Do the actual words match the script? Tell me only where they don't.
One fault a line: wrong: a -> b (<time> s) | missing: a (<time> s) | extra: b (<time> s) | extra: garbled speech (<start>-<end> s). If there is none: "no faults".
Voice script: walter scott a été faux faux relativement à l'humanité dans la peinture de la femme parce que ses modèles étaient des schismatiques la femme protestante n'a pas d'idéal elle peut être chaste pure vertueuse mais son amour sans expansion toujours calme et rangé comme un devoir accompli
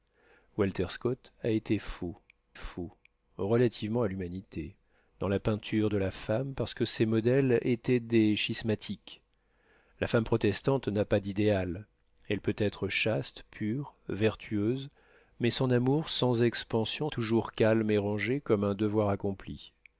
no faults